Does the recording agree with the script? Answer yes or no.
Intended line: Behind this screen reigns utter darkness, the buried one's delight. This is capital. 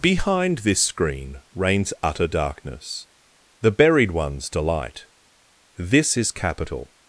yes